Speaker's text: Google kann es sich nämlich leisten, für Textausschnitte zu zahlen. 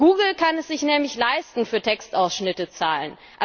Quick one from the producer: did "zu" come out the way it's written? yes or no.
no